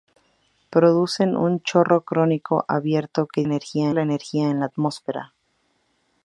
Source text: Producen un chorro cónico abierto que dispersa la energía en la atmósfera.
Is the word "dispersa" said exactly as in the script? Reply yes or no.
no